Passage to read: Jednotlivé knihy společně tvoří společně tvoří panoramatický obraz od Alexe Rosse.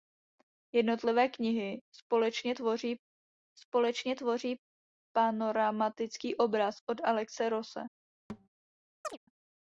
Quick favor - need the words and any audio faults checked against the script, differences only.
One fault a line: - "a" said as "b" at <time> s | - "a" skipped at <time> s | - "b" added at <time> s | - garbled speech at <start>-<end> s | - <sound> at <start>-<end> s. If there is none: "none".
- thud at 8.3-8.5 s
- chirp at 9.0-9.2 s